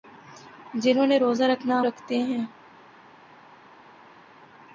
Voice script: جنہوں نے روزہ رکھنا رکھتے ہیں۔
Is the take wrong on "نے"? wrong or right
right